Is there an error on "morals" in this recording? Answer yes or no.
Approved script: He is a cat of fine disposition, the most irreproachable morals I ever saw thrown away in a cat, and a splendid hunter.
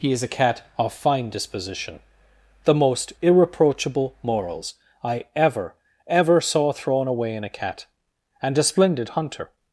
no